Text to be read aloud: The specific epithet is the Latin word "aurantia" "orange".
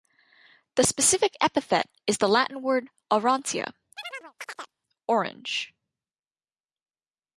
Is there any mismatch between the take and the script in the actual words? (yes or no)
no